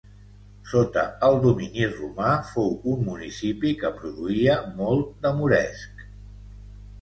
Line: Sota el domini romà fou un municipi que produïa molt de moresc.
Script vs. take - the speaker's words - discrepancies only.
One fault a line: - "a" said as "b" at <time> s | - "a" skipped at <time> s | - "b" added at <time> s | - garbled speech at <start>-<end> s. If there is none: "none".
none